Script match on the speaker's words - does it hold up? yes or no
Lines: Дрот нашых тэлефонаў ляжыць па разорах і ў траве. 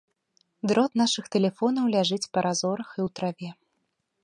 yes